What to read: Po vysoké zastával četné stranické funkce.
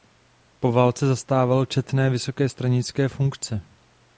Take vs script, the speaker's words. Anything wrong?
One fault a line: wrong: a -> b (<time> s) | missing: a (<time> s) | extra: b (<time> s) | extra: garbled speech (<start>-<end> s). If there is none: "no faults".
wrong: vysoké -> válce (0.7 s)
extra: vysoké (2.1 s)